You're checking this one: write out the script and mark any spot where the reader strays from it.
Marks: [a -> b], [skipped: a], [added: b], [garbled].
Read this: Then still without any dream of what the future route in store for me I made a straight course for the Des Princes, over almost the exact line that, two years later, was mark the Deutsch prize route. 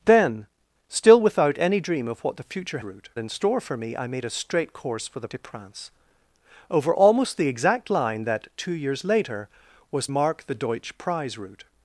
Then still without any dream of what the future route in store for me I made a straight course for the Des Princes, over almost the exact line that, two years later, was mark the Deutsch prize route.